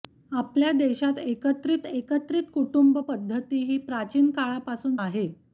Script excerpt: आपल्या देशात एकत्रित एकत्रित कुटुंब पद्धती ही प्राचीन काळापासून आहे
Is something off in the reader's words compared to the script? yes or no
no